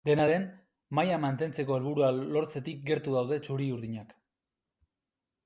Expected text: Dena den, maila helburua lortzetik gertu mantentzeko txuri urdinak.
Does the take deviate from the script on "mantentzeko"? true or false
true